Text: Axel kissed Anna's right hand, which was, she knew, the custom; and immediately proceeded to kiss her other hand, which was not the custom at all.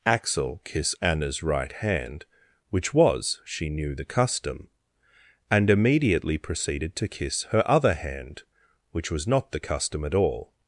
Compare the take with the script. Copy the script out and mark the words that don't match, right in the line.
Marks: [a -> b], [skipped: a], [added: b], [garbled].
Axel [kissed -> kiss] Anna's right hand, which was, she knew, the custom; and immediately proceeded to kiss her other hand, which was not the custom at all.